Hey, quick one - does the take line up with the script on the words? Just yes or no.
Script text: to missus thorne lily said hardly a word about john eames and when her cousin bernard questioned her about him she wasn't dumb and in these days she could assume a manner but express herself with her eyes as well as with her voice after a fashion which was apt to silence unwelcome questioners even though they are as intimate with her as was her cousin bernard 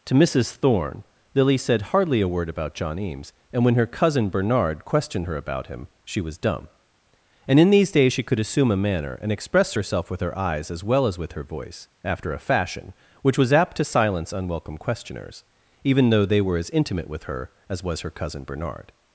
no